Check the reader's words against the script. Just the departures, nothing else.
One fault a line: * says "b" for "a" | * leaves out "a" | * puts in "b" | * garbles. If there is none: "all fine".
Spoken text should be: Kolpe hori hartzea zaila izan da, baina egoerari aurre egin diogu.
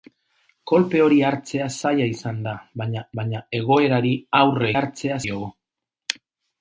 * puts in "baina"
* says "hartzea" for "egin"